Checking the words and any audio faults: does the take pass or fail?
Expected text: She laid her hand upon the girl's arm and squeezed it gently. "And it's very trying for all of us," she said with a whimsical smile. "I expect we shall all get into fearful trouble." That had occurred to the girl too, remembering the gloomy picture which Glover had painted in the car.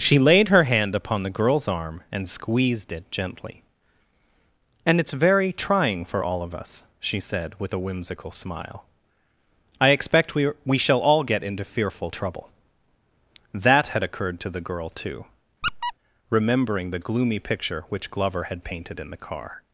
fail